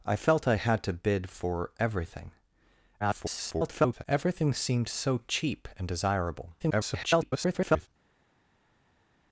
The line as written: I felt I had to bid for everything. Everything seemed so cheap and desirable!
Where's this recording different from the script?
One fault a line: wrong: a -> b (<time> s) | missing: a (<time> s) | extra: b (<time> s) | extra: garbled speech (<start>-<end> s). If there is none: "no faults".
extra: garbled speech (3.0-4.0 s)
extra: garbled speech (6.6-7.9 s)